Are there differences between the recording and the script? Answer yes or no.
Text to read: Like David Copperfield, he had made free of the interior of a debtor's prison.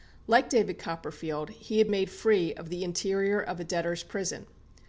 no